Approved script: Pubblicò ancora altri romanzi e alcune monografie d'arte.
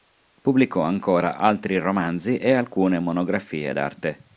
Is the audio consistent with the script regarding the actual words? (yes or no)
yes